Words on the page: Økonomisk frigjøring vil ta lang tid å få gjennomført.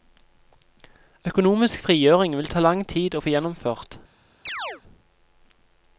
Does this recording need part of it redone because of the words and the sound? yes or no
yes